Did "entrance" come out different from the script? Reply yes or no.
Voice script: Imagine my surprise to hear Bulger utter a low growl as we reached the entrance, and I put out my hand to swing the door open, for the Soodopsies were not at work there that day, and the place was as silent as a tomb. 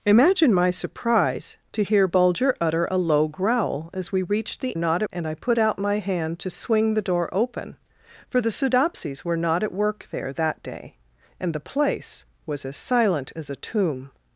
yes